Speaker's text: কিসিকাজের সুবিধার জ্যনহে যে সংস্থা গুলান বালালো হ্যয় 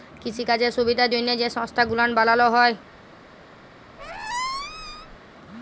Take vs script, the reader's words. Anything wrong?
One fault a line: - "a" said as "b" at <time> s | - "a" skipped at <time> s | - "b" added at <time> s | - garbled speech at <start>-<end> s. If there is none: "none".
none